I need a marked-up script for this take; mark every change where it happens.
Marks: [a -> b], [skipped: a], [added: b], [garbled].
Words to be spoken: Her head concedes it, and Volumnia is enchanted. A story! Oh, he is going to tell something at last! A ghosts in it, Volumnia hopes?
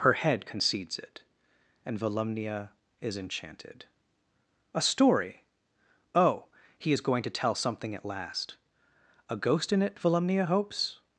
Her head concedes it, and Volumnia is enchanted. A story! Oh, he is going to tell something at last! A [ghosts -> ghost] in it, Volumnia hopes?